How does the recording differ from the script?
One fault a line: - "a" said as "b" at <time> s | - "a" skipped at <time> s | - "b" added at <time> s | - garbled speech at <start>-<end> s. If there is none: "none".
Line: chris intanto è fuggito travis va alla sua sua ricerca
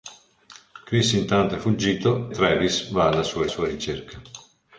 none